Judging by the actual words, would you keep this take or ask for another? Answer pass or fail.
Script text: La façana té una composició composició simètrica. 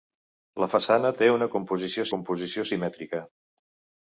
pass